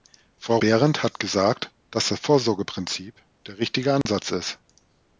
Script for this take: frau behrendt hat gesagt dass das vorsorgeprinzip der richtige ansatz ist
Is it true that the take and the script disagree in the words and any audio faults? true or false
true